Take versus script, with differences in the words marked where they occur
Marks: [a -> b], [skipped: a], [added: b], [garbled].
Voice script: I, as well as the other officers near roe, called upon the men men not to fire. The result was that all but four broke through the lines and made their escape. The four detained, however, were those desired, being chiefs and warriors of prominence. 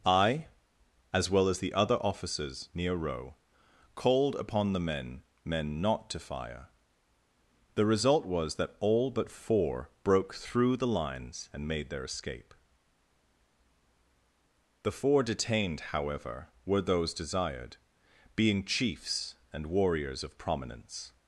I, as well as the other officers near roe, called upon the men men not to fire. The result was that all but four broke through the lines and made their escape. The four detained, however, were those desired, being chiefs and warriors of prominence.